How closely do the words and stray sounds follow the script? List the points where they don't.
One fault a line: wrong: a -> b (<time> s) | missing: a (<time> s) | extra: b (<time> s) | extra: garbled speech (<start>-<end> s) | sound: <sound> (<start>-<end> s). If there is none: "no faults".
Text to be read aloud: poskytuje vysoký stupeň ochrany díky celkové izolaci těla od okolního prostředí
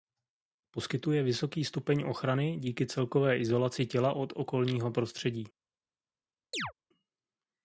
sound: chirp (6.5-6.7 s)